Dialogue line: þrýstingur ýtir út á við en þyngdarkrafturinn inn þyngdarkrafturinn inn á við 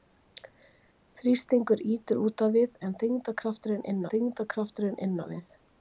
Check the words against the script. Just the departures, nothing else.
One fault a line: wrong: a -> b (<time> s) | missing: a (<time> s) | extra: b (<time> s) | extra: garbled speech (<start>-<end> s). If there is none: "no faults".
no faults